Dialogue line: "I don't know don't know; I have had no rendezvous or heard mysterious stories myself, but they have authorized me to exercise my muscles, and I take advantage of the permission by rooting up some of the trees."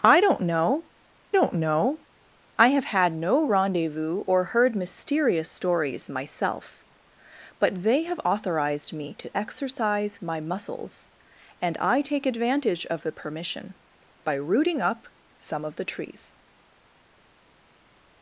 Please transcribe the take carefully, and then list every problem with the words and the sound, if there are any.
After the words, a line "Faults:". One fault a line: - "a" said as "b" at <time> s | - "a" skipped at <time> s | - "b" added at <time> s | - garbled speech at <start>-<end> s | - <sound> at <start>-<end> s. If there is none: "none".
"I don't know don't know; I have had no rendezvous or heard mysterious stories myself, but they have authorized me to exercise my muscles, and I take advantage of the permission by rooting up some of the trees."
Faults:
none